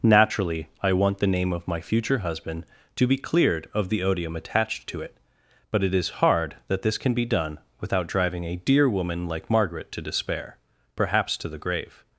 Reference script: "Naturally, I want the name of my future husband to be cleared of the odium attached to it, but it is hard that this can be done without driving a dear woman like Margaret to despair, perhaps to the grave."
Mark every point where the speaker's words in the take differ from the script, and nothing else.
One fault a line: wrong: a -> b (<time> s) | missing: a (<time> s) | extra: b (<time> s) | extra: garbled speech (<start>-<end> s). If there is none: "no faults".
no faults